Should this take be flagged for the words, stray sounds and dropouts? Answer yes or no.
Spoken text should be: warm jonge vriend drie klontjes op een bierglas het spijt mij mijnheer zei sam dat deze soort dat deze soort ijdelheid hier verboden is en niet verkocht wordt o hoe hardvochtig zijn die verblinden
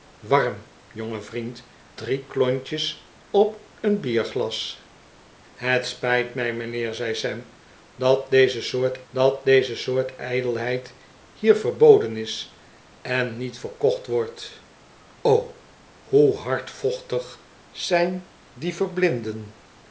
no